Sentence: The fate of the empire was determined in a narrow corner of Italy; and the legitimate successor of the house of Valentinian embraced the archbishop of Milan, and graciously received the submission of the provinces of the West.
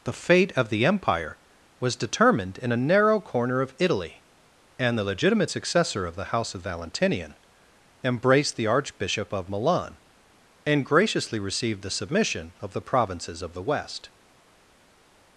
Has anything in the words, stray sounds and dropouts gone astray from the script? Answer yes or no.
no